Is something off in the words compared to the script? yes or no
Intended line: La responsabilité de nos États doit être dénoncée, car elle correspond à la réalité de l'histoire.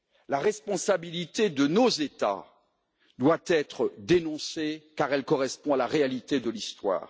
no